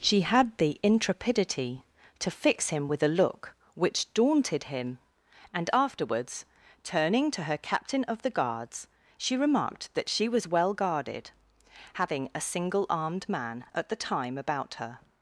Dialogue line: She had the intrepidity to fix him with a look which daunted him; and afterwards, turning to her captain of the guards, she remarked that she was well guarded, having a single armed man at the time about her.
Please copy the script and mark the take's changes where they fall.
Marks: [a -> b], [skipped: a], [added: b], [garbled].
She had the intrepidity to fix him with a look which daunted him; and afterwards, turning to her captain of the guards, she remarked that she was well guarded, having a single armed man at the time about her.